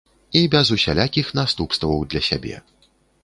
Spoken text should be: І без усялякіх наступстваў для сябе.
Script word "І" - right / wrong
right